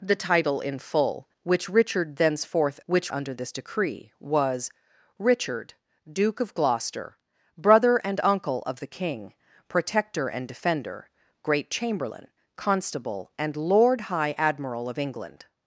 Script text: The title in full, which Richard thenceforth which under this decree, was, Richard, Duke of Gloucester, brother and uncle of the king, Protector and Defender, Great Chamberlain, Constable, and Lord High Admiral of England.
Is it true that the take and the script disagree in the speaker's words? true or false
false